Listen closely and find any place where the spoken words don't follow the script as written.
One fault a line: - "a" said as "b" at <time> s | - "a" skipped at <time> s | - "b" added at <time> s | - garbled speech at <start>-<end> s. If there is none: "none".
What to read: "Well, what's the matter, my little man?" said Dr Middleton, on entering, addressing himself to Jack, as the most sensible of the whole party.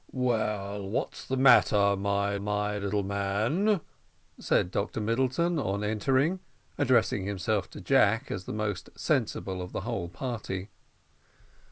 - "my" added at 2.4 s